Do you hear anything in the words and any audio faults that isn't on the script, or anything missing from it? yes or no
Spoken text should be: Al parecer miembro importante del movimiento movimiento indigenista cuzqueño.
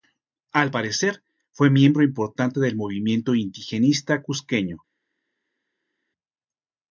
yes